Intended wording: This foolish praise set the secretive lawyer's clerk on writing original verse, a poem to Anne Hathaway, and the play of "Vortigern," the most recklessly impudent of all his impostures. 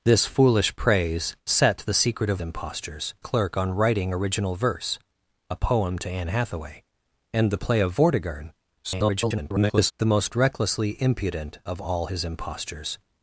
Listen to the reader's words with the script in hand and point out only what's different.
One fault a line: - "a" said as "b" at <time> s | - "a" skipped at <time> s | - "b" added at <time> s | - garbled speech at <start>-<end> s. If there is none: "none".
- "lawyer's" said as "impostures" at 2.4 s
- garbled speech at 8.8-9.9 s